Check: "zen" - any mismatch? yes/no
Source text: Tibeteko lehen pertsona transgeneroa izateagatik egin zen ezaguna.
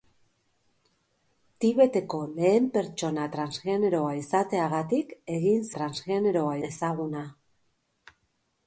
yes